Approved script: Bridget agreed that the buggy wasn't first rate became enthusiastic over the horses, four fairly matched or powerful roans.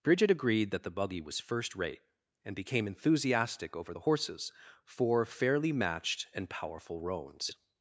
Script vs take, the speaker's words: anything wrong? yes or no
yes